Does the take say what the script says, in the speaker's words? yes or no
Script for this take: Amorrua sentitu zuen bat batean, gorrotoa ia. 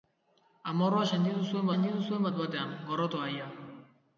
no